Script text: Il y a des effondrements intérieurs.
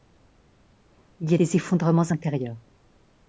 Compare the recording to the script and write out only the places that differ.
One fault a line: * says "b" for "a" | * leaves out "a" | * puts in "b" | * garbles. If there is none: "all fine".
all fine